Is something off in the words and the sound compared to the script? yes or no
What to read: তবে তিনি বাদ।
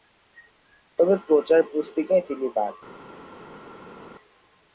yes